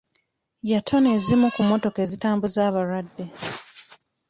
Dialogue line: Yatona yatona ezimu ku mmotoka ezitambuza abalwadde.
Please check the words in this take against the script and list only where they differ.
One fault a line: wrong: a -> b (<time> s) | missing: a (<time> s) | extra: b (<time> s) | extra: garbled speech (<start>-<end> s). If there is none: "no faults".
missing: yatona (1.1 s)